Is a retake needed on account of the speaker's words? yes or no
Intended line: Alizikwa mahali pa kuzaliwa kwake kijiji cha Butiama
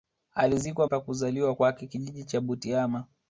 yes